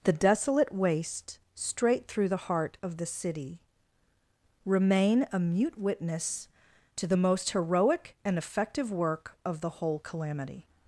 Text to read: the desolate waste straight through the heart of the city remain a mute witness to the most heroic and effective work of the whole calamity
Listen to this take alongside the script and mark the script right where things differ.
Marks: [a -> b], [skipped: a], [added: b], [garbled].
the desolate waste straight through the heart of the city remain a mute witness to the most heroic and effective work of the whole calamity